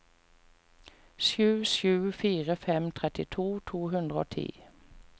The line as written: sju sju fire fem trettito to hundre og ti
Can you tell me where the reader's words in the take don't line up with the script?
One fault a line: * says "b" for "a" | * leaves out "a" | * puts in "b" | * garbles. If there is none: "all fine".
all fine